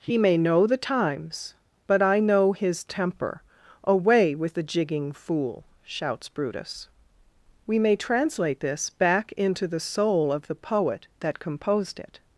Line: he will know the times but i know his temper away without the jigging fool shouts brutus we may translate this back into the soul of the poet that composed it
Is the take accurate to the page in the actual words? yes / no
no